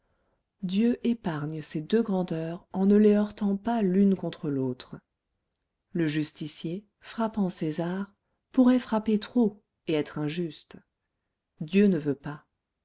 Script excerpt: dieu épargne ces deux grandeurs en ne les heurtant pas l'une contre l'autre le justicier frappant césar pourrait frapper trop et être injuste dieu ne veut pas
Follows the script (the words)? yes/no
yes